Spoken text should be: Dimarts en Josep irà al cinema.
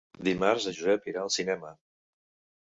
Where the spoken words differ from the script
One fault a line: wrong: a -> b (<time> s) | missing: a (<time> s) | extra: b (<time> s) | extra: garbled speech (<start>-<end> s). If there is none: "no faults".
no faults